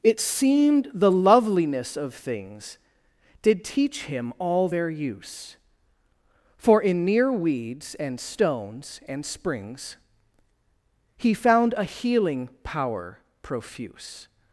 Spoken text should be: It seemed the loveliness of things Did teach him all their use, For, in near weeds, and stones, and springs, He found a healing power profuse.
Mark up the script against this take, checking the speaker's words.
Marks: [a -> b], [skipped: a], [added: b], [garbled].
It seemed the loveliness of things Did teach him all their use, For, in near weeds, and stones, and springs, He found a healing power profuse.